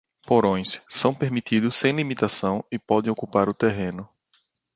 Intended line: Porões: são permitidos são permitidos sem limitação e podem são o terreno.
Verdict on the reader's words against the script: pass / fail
fail